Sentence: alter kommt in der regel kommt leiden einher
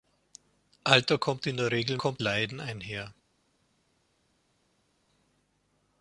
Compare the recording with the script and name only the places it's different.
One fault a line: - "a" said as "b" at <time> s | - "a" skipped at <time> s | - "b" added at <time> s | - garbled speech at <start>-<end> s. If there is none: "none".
none